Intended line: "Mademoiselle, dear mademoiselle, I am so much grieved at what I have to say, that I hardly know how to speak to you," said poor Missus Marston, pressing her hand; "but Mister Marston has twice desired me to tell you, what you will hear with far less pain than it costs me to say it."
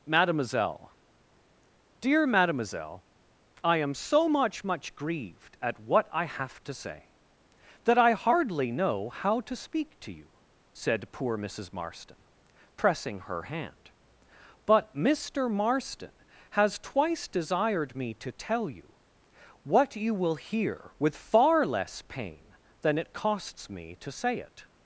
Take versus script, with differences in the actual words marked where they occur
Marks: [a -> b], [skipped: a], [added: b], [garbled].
"Mademoiselle, dear mademoiselle, I am so much [added: much] grieved at what I have to say, that I hardly know how to speak to you," said poor Missus Marston, pressing her hand; "but Mister Marston has twice desired me to tell you, what you will hear with far less pain than it costs me to say it."